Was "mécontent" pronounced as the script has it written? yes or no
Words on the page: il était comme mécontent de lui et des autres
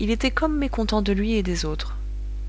yes